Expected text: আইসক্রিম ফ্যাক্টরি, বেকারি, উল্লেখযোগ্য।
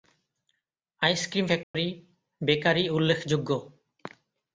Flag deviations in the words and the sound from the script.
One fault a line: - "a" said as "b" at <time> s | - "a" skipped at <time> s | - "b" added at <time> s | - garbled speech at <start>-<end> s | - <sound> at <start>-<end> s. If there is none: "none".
- dropout at 1.6-1.7 s